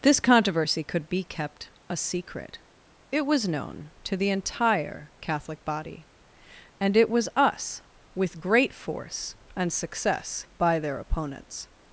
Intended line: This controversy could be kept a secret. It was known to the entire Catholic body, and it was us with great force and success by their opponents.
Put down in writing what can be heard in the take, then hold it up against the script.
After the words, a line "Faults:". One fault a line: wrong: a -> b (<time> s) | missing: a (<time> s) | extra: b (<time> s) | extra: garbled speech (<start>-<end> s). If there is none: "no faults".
This controversy could be kept a secret. It was known to the entire Catholic body, and it was us with great force and success by their opponents.
Faults:
no faults